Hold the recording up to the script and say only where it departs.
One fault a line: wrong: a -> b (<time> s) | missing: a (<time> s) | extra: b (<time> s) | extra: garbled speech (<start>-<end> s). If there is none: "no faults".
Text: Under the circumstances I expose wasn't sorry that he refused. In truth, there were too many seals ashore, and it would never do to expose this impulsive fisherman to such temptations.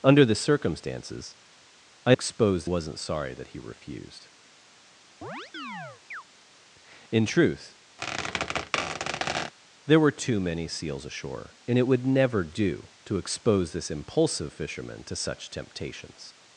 no faults